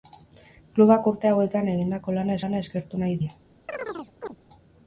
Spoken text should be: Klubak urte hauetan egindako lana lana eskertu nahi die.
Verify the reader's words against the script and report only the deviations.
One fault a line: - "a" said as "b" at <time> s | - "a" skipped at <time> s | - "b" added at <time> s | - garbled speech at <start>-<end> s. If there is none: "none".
none